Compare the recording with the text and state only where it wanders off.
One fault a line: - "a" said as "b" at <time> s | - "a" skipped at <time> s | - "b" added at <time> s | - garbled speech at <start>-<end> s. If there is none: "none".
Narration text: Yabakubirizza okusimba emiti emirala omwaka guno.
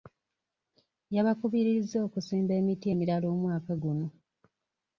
none